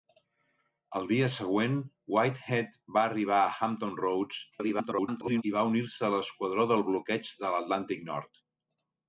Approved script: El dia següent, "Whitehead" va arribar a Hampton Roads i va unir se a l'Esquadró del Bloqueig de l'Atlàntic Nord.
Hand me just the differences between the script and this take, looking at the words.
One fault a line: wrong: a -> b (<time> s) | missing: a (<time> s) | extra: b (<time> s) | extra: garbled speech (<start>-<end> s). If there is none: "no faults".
extra: garbled speech (4.5-5.4 s)